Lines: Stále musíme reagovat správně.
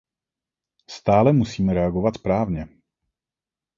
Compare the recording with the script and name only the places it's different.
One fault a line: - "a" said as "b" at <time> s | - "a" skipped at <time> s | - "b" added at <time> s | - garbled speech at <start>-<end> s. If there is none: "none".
none